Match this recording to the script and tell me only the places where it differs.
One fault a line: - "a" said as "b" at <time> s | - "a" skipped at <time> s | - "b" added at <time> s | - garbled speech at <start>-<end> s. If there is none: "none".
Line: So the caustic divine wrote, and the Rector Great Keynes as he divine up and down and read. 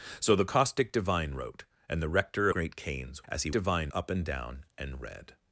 none